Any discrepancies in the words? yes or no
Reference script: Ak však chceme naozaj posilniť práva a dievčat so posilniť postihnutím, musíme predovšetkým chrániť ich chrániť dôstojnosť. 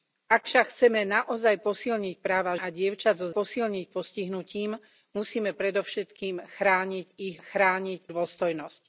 no